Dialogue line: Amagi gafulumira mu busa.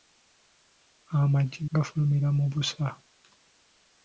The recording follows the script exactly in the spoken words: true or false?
true